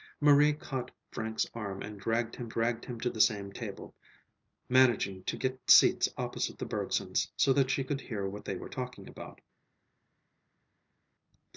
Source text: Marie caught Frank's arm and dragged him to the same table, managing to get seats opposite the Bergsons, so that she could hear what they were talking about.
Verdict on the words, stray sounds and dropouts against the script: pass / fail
fail